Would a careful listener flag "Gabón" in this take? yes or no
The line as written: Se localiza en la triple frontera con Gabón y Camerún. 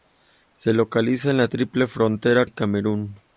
yes